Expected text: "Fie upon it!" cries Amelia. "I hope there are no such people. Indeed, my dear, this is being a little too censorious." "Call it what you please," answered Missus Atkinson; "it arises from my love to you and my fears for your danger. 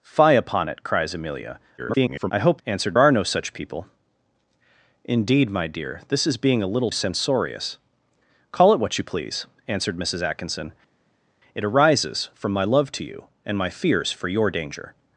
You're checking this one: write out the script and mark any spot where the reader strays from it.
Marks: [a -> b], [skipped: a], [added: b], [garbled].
"Fie upon it!" cries Amelia. [garbled] "I hope [there -> answered] are no such people. Indeed, my dear, this is being a little [skipped: too] censorious." "Call it what you please," answered Missus Atkinson; "it arises from my love to you and my fears for your danger.